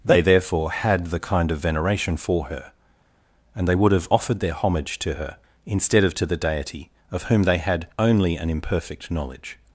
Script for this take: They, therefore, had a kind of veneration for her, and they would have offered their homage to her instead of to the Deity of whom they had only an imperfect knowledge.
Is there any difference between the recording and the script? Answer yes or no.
yes